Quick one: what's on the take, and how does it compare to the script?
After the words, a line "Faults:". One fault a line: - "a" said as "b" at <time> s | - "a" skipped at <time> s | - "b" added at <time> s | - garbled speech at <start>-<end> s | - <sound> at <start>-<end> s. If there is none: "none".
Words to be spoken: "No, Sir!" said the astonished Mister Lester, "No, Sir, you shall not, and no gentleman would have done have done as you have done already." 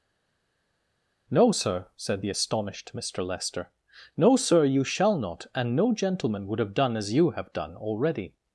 "No, Sir!" said the astonished Mister Lester, "No, Sir, you shall not, and no gentleman would have done as you have done already."
Faults:
- "have done" skipped at 7.0 s